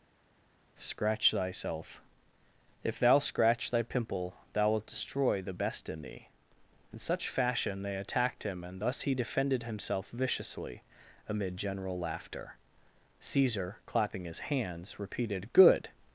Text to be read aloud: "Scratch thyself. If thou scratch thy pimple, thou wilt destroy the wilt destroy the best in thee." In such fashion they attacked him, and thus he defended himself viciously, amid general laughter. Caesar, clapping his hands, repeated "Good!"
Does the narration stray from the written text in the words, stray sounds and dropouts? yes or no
yes